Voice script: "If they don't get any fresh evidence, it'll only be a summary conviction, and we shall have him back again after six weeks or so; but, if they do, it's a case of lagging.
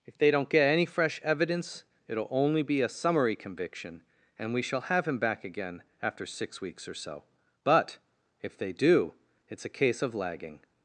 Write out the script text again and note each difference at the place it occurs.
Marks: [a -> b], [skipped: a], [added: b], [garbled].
"If they don't get any fresh evidence, it'll only be a summary conviction, and we shall have him back again after six weeks or so; but, if they do, it's a case of lagging.